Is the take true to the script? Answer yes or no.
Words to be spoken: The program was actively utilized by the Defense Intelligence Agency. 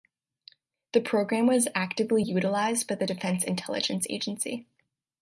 yes